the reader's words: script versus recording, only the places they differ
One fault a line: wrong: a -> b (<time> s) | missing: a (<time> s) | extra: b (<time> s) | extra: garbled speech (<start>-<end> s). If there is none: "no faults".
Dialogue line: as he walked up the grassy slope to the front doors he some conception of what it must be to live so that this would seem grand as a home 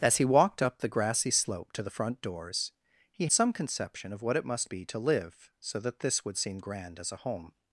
no faults